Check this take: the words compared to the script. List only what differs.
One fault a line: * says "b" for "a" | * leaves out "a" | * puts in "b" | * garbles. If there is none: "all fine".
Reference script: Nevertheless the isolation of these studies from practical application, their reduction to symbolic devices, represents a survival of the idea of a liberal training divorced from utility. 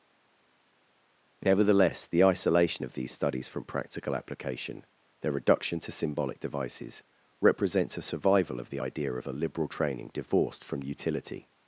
all fine